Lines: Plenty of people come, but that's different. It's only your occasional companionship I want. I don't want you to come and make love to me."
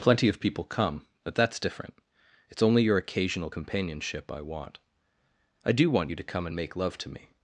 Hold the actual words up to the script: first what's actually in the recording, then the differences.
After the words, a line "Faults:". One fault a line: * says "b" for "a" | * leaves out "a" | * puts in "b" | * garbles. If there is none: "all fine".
Plenty of people come, but that's different. It's only your occasional companionship I want. I do want you to come and make love to me."
Faults:
* says "do" for "don't"